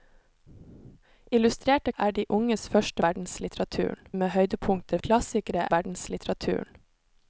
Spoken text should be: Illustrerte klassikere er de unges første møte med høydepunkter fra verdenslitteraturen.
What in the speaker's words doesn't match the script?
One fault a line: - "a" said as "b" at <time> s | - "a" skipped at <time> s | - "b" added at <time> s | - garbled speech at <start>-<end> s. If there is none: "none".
- "klassikere" skipped at 1.9 s
- "møte" said as "verdenslitteraturen" at 3.0 s
- "fra" said as "klassikere" at 5.0 s